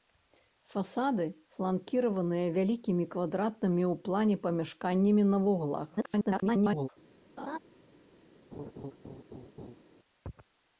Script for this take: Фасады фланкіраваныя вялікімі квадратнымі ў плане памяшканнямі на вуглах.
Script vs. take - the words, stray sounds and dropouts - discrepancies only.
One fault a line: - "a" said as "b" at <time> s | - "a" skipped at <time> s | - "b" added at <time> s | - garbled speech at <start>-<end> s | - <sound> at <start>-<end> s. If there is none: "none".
- garbled speech at 6.0-6.9 s
- laugh at 7.4-7.6 s
- laugh at 8.5-9.8 s